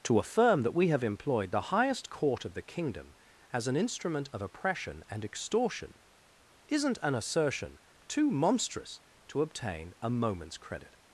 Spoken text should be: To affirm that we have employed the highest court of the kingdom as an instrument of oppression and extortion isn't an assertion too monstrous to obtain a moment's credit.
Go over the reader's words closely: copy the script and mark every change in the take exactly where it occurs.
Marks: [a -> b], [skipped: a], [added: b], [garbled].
To affirm that we have employed the highest court of the kingdom as an instrument of oppression and extortion isn't an assertion too monstrous to obtain a moment's credit.